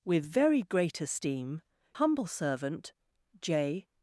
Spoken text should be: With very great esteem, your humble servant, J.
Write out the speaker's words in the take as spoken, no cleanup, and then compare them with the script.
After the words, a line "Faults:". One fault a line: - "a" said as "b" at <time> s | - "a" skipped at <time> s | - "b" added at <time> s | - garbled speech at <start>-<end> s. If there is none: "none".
With very great esteem, humble servant, J.
Faults:
- "your" skipped at 1.6 s